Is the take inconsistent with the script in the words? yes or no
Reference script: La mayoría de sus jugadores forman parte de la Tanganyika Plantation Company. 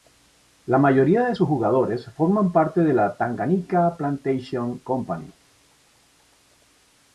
no